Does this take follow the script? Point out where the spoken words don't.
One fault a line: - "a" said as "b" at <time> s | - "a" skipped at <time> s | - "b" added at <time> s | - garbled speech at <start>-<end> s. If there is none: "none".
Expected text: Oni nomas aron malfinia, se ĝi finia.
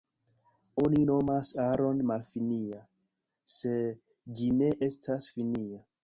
- "ne estas" added at 4.6 s